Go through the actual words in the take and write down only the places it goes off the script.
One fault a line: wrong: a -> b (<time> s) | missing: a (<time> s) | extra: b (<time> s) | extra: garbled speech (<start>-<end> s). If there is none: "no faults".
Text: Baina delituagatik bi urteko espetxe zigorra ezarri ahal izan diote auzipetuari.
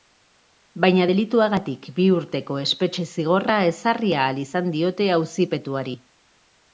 no faults